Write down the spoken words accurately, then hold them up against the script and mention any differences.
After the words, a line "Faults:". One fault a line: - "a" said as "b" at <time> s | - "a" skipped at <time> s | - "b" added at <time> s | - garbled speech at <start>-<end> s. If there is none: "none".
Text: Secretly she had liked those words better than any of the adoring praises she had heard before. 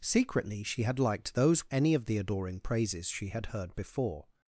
Secretly she had liked those any of the adoring praises she had heard before.
Faults:
- "words better than" skipped at 1.7 s